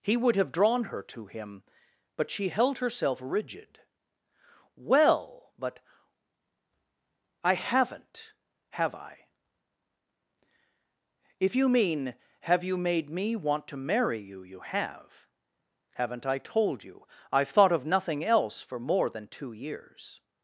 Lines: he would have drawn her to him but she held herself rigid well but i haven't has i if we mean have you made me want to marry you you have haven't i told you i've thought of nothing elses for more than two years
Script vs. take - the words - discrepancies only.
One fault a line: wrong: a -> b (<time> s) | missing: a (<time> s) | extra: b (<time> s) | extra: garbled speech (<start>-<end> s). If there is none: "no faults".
wrong: has -> have (8.7 s)
wrong: we -> you (11.6 s)
wrong: elses -> else (18.2 s)